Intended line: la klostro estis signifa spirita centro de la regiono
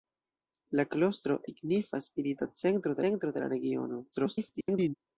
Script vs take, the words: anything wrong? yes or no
yes